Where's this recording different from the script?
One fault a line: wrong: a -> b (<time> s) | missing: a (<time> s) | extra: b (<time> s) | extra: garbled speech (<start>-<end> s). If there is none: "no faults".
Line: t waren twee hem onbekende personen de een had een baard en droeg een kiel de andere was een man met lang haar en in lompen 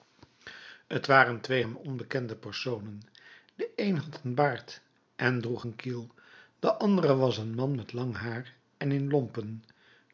no faults